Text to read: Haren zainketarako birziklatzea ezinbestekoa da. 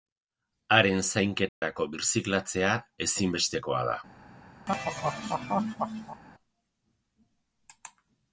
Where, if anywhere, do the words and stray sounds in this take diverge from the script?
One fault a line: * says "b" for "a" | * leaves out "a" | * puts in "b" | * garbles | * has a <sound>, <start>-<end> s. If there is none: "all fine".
* has a dropout, 1.5-1.6 s
* has a laugh, 4.7-6.2 s